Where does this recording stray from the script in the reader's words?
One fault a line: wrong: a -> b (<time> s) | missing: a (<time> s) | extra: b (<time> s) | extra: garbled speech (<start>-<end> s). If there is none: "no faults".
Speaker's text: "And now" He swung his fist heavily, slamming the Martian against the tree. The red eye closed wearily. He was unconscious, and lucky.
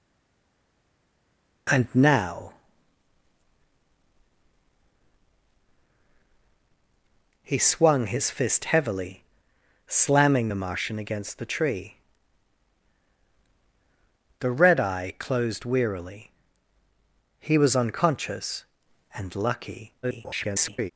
extra: garbled speech (20.0-20.9 s)